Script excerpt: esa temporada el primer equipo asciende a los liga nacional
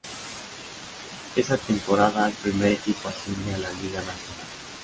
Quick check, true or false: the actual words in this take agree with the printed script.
false